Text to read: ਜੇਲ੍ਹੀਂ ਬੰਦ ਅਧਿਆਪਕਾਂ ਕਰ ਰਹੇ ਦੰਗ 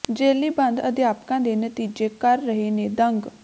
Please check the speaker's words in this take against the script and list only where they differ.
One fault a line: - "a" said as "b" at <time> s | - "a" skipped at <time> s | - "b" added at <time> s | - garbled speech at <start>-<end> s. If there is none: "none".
- "ਦੇ ਨਤੀਜੇ" added at 1.4 s
- "ਨੇ" added at 2.7 s